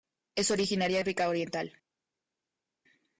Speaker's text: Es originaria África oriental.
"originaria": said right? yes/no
yes